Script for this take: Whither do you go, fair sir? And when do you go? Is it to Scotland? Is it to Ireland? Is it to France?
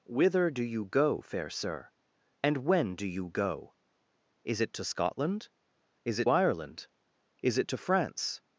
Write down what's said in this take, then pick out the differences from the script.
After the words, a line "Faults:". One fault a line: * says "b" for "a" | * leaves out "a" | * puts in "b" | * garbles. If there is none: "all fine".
Whither do you go, fair sir? And when do you go? Is it to Scotland? Is it Ireland? Is it to France?
Faults:
* leaves out "to"